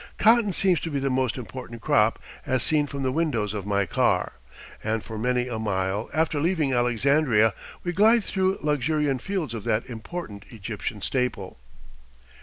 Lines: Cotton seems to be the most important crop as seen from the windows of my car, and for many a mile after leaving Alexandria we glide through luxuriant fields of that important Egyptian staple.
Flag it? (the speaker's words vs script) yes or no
no